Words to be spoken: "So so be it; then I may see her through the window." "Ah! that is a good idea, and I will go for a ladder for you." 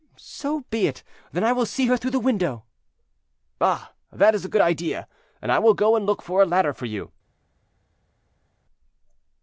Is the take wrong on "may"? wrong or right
wrong